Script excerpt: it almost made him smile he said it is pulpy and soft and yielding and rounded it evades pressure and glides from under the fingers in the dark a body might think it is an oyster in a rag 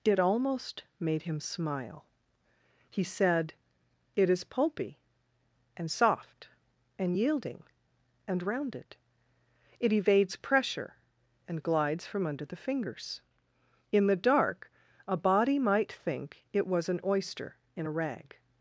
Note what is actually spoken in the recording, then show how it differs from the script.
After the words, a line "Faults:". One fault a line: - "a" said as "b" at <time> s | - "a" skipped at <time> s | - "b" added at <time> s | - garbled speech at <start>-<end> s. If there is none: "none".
it almost made him smile he said it is pulpy and soft and yielding and rounded it evades pressure and glides from under the fingers in the dark a body might think it was an oyster in a rag
Faults:
- "is" said as "was" at 16.7 s